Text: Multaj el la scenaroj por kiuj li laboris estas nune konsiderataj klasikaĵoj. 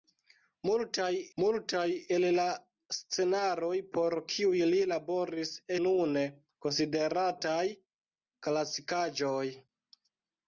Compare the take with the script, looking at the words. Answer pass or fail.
fail